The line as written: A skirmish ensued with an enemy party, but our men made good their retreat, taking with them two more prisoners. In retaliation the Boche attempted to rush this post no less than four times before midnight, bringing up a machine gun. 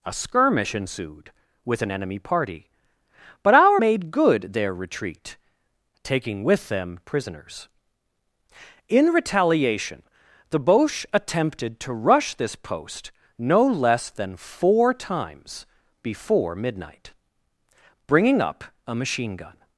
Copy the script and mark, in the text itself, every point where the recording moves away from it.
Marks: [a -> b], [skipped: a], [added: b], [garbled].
A skirmish ensued with an enemy party, but our [skipped: men] made good their retreat, taking with them [skipped: two more] prisoners. In retaliation the Boche attempted to rush this post no less than four times before midnight, bringing up a machine gun.